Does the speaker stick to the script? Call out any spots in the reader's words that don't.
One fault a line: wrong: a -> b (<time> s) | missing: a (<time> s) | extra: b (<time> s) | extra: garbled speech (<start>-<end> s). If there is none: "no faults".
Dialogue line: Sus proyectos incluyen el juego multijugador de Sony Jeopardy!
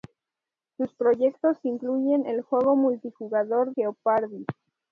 missing: de Sony (3.7 s)